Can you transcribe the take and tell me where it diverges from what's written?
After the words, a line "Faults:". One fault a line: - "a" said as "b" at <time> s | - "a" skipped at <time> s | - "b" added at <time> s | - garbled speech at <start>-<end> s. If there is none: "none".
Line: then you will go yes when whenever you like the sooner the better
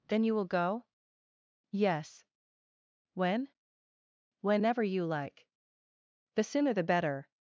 then you will go yes when whenever you like the sooner the better
Faults:
none